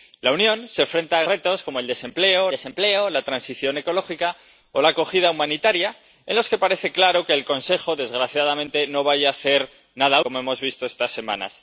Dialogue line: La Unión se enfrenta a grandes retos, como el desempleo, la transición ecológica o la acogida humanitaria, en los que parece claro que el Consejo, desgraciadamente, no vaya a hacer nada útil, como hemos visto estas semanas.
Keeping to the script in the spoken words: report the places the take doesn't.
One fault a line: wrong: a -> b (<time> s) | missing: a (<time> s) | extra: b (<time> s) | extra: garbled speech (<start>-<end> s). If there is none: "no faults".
missing: grandes (1.2 s)
extra: desempleo (2.5 s)
missing: útil (10.2 s)